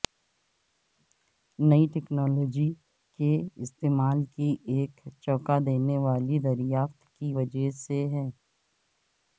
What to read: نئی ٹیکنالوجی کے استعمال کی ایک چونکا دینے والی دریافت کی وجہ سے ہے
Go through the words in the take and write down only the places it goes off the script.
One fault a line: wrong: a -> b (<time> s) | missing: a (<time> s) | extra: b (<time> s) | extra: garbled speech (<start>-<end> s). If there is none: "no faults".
no faults